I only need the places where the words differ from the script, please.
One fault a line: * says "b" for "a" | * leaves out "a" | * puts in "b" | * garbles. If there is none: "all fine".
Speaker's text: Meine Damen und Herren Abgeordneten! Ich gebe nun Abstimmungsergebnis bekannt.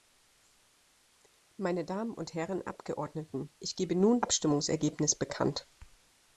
all fine